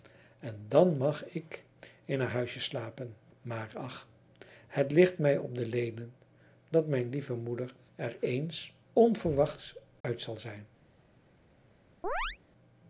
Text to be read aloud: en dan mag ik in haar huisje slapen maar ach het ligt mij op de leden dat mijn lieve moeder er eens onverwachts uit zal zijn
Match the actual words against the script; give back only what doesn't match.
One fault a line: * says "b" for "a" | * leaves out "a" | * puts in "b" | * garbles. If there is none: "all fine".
all fine